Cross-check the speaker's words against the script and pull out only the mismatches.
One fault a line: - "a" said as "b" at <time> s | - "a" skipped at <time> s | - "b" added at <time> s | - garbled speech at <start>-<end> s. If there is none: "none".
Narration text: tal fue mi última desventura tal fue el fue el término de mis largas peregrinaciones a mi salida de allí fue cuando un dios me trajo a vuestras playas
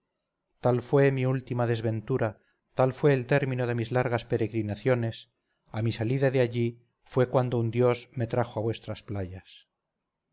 - "fue el" skipped at 3.3 s